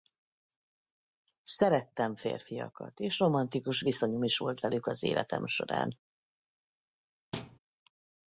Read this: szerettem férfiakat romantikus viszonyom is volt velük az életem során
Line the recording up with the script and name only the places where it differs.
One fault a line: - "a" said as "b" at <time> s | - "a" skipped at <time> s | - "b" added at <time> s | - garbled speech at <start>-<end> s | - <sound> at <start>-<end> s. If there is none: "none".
- "és" added at 3.0 s
- thud at 7.3-7.6 s